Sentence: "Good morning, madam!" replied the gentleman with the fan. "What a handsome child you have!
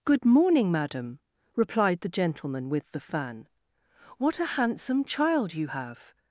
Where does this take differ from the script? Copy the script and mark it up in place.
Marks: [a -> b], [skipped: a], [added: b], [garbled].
"Good morning, madam!" replied the gentleman with the fan. "What a handsome child you have!